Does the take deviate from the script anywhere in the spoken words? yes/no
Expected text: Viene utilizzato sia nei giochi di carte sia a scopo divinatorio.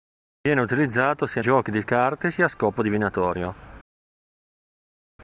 yes